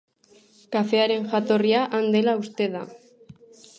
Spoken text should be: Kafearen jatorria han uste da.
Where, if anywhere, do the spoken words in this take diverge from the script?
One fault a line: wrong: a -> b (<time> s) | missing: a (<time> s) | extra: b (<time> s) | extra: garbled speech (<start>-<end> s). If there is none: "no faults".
extra: dela (2.2 s)